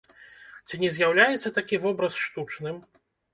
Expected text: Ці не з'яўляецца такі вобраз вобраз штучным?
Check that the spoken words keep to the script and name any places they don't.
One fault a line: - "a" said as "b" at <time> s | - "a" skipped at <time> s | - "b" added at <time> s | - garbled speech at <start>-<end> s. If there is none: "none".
- "вобраз" skipped at 2.2 s